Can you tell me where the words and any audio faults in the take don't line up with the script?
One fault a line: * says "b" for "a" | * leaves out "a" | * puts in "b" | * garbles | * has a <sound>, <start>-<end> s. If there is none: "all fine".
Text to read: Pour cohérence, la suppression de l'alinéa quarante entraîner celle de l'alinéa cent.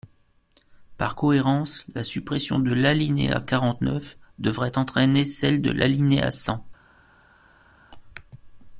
* says "Par" for "Pour"
* puts in "neuf devrait"